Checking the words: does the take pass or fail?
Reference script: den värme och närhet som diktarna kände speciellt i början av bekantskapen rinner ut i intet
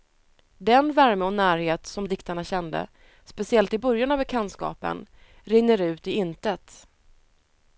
pass